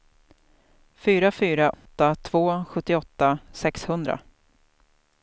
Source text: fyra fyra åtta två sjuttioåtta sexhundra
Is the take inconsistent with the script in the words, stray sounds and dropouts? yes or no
yes